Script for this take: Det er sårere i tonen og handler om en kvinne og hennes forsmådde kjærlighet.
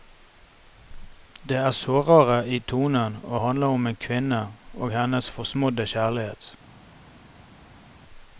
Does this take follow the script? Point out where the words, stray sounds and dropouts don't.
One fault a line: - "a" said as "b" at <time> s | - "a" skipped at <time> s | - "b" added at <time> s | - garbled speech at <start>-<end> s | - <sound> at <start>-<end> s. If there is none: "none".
none